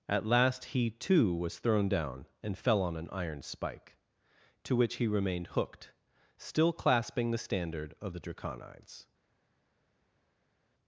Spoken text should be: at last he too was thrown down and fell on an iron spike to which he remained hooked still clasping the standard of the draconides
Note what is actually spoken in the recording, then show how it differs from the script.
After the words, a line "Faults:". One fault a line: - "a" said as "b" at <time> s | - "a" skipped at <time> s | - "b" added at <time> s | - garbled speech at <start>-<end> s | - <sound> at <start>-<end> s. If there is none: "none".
at last he too was thrown down and fell on an iron spike to which he remained hooked still clasping the standard of the draconides
Faults:
none